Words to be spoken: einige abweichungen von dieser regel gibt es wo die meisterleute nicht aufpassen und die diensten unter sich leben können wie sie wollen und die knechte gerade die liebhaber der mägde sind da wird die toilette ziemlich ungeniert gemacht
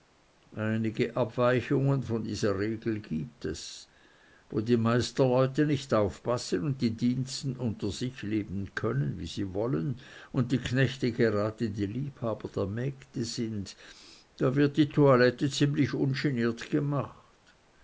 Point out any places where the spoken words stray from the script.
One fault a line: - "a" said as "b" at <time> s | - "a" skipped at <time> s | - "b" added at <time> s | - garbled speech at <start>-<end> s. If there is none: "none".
none